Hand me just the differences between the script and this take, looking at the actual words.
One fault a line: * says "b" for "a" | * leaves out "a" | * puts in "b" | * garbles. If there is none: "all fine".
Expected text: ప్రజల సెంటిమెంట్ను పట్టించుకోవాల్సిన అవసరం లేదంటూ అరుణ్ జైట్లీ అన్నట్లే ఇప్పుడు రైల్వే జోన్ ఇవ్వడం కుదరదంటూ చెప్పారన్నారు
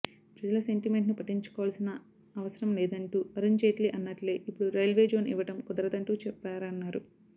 all fine